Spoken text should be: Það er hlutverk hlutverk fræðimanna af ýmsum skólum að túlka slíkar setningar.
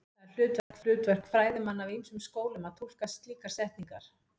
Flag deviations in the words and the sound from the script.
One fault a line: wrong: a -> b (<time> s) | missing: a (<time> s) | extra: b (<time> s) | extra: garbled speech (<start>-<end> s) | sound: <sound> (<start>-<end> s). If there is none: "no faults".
sound: dropout (0.6-0.7 s)